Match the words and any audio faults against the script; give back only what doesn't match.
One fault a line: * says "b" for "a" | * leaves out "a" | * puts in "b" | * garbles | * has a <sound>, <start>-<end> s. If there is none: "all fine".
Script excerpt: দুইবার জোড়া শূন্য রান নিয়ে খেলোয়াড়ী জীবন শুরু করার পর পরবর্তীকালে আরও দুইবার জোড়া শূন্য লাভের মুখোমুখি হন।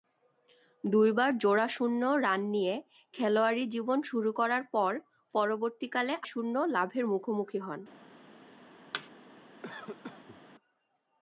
* leaves out "আরও দুইবার জোড়া"
* has a thud, 8.9-9.1 s
* has a cough, 9.6-10.4 s